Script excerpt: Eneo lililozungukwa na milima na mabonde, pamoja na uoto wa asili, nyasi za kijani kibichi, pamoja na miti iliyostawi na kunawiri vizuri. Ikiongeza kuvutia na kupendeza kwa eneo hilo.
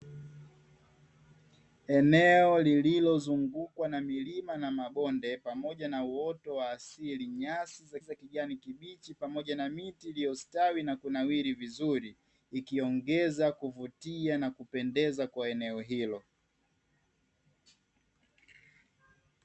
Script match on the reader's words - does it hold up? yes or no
no